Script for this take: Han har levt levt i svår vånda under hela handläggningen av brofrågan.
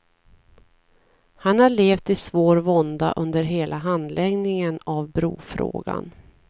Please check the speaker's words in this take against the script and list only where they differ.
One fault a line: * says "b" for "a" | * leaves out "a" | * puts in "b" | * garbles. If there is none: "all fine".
* leaves out "levt"